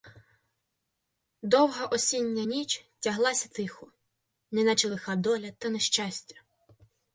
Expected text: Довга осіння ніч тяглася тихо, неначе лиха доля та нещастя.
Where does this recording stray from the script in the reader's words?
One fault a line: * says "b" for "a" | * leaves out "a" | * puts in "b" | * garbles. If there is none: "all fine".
all fine